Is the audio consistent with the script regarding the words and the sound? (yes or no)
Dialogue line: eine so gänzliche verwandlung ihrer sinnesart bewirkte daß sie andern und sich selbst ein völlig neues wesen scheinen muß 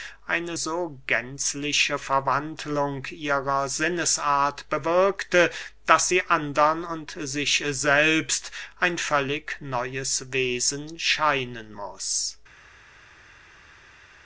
yes